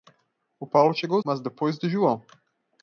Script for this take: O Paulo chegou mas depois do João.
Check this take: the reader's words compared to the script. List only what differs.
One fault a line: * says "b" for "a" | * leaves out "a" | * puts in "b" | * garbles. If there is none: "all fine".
all fine